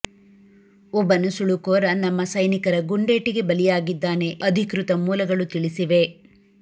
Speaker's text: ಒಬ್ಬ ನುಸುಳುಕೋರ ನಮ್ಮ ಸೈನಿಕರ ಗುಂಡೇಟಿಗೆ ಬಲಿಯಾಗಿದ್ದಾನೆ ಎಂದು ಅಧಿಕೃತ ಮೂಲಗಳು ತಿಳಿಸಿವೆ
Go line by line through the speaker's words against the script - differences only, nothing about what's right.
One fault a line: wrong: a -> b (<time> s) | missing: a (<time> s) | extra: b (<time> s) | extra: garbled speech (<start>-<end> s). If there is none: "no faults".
missing: ಎಂದು (4.3 s)